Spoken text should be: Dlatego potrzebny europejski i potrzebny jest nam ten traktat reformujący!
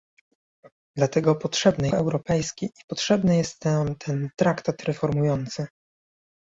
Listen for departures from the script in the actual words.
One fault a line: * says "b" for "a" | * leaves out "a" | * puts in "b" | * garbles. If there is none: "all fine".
all fine